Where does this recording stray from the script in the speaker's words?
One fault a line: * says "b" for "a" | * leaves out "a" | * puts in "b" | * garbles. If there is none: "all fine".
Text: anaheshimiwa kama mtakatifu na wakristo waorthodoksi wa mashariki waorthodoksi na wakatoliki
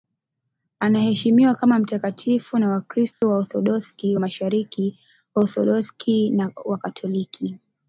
all fine